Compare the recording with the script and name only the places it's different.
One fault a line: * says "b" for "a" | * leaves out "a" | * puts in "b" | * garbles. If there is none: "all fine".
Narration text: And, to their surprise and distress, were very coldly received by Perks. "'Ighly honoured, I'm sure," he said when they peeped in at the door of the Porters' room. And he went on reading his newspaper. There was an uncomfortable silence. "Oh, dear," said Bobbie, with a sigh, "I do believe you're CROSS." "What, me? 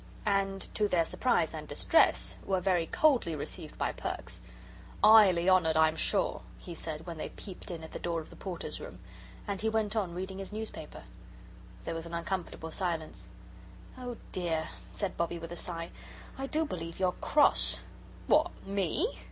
all fine